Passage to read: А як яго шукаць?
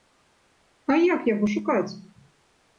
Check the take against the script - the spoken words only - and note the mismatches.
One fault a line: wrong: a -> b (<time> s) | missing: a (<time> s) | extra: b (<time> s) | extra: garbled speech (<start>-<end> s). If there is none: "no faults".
no faults